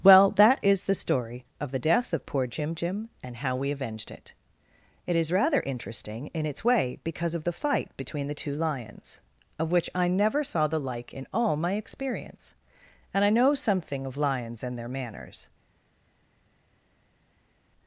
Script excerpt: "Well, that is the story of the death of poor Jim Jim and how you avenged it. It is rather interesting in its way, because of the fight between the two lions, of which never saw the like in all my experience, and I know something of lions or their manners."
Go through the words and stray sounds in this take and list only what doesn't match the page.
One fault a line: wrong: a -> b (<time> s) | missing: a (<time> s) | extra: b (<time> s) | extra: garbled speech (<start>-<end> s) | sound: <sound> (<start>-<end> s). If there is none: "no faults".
wrong: you -> we (3.5 s)
extra: I (9.9 s)
wrong: or -> and (14.6 s)